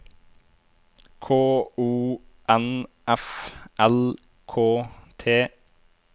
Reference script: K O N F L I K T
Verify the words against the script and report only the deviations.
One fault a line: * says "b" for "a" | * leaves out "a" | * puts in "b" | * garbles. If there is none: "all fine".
* leaves out "I"